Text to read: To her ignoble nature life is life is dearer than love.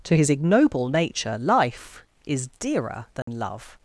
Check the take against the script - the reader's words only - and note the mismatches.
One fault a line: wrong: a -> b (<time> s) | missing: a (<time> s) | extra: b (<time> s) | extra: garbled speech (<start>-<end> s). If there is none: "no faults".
wrong: her -> his (0.1 s)
missing: life is (2.5 s)